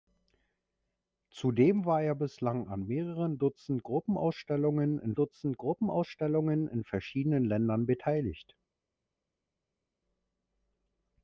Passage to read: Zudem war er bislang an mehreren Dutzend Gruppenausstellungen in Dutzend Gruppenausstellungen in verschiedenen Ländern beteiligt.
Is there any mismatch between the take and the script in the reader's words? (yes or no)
no